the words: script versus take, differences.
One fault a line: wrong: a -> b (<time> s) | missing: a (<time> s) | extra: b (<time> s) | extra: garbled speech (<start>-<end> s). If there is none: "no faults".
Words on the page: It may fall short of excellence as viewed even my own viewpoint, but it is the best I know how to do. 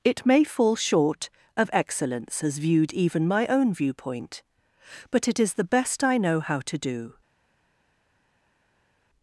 no faults